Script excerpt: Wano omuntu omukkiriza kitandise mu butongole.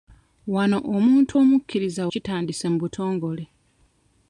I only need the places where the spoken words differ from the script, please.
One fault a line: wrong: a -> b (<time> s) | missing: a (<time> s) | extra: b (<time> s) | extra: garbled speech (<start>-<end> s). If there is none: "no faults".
no faults